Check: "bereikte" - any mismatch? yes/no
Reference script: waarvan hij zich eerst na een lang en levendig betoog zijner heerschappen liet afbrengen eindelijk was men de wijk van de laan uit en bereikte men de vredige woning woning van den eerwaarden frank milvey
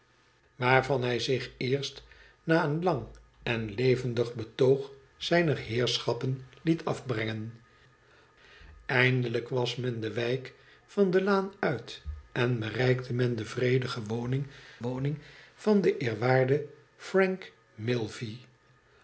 no